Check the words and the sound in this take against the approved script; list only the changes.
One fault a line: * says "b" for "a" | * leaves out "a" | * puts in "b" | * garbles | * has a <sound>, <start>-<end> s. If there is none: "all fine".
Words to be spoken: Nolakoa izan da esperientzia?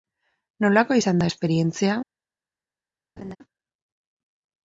* has a laugh, 3.2-3.4 s